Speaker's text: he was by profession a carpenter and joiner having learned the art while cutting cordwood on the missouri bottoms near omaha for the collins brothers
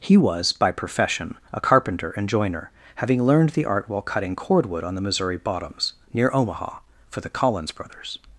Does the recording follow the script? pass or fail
pass